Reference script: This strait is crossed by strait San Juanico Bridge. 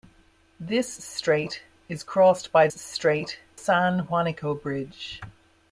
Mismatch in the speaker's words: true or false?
false